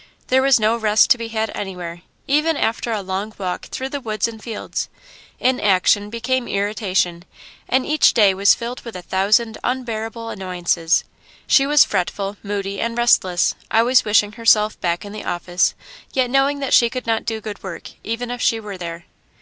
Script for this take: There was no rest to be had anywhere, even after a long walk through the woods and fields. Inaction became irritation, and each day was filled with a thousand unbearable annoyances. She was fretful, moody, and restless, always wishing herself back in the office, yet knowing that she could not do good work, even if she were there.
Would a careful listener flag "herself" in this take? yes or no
no